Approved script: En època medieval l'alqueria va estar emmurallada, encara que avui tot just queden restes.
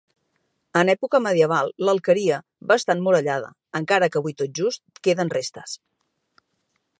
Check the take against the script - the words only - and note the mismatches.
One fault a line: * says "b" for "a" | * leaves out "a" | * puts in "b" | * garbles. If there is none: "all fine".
all fine